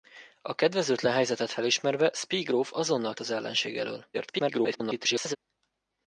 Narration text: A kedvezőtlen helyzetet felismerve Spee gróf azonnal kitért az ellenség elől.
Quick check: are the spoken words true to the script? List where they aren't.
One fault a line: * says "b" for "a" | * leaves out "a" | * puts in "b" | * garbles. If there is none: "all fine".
* leaves out "kitért"
* garbles